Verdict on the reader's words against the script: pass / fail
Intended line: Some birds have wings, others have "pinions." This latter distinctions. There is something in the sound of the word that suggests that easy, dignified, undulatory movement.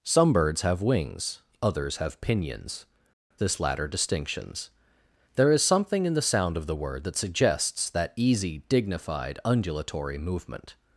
pass